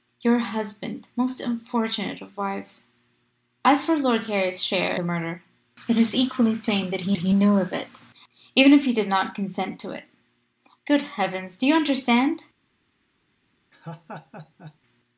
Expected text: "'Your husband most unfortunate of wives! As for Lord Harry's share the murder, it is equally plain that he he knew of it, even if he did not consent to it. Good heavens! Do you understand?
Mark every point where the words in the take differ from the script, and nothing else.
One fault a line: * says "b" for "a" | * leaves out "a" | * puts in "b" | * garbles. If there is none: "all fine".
all fine